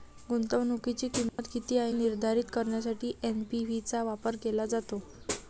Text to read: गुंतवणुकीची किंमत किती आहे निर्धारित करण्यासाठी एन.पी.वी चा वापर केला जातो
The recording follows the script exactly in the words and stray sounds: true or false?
false